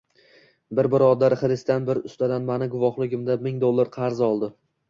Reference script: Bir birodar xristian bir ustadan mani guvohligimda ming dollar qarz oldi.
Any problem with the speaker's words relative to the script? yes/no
no